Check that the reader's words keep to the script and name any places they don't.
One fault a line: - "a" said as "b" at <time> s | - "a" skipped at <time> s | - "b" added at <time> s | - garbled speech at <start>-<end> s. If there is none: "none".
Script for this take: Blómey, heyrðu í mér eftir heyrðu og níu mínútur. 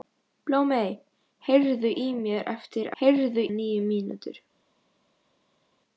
none